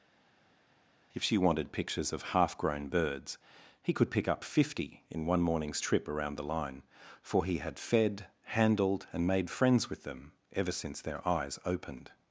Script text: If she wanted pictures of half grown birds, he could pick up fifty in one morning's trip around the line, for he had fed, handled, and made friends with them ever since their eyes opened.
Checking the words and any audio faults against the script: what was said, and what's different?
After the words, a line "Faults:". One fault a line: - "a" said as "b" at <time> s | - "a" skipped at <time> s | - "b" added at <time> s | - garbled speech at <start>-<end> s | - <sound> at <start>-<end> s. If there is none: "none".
If she wanted pictures of half grown birds, he could pick up fifty in one morning's trip around the line, for he had fed, handled, and made friends with them ever since their eyes opened.
Faults:
none